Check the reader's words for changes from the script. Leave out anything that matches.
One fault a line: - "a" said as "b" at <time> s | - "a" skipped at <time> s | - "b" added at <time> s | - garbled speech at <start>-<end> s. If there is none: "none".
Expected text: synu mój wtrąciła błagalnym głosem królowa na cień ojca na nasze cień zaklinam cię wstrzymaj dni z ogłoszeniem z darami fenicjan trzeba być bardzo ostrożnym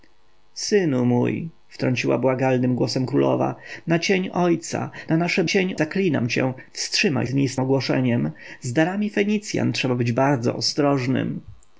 none